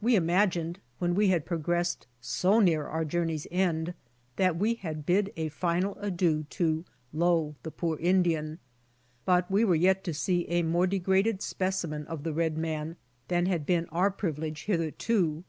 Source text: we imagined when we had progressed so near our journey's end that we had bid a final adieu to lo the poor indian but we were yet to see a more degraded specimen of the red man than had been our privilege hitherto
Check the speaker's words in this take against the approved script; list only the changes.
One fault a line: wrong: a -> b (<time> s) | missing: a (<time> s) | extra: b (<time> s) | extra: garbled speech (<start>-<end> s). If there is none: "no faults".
no faults